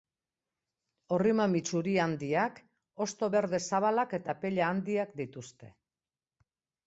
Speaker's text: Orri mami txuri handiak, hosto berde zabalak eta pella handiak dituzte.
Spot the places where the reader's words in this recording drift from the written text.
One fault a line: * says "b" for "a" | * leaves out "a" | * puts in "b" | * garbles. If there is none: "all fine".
all fine